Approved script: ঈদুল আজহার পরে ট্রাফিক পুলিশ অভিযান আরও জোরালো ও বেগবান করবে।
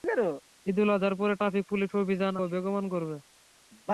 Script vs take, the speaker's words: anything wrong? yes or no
yes